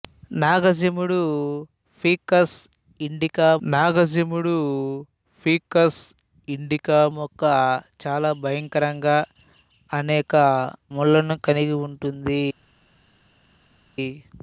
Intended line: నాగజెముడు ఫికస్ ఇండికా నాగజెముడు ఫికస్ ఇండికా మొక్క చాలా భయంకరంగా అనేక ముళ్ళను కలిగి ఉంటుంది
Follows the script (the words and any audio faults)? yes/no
yes